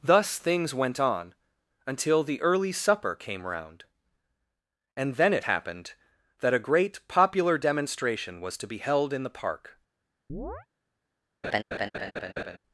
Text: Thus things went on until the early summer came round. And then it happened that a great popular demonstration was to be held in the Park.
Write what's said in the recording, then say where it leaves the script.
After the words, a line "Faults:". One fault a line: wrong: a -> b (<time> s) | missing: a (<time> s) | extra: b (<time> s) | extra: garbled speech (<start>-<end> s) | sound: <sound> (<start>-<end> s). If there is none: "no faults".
Thus things went on until the early supper came round. And then it happened that a great popular demonstration was to be held in the Park.
Faults:
wrong: summer -> supper (2.7 s)
sound: chirp (10.3-10.7 s)
sound: laugh (11.4-12.6 s)